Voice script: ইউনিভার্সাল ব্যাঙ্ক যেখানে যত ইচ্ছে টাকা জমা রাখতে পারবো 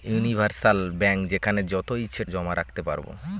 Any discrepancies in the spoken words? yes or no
yes